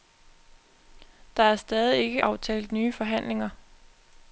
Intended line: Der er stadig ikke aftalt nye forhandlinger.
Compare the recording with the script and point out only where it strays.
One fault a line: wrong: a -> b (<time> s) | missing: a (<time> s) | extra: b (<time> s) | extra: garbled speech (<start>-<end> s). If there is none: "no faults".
no faults